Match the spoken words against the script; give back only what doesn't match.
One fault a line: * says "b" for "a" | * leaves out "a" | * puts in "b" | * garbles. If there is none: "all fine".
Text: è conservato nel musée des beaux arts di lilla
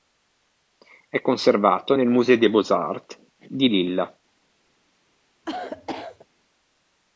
all fine